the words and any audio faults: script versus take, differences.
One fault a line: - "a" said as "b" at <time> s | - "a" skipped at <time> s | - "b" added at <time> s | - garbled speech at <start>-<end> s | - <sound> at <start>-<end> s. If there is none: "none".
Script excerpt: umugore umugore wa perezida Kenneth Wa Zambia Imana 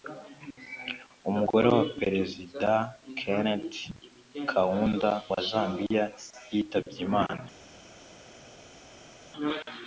- "umugore" skipped at 1.7 s
- "Kaunda" added at 4.5 s
- "yitabye" added at 6.5 s